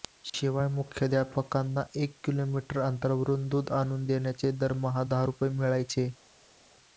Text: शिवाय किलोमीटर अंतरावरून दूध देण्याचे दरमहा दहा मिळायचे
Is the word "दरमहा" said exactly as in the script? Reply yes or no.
yes